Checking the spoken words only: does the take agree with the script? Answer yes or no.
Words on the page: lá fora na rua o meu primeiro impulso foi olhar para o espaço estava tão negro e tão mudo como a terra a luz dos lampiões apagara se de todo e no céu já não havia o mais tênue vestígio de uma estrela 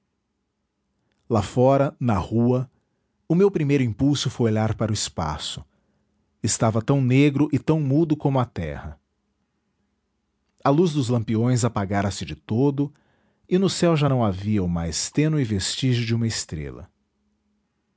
yes